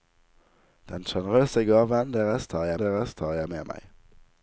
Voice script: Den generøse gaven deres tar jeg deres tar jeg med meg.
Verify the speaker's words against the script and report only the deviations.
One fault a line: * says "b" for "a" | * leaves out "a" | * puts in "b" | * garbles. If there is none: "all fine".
all fine